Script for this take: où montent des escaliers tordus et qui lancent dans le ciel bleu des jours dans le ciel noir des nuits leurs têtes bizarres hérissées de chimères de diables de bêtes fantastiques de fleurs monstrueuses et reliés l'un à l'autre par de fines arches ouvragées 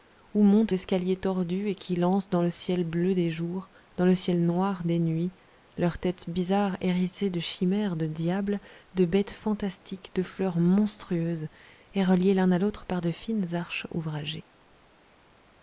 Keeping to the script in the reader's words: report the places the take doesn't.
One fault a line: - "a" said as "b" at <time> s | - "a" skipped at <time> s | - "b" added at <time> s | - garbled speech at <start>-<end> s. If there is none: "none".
- "des" skipped at 0.7 s